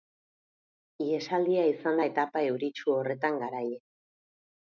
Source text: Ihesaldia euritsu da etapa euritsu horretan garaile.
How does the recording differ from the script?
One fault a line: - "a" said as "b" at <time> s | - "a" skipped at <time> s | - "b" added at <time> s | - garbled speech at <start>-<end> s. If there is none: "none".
- "euritsu" said as "izan" at 1.7 s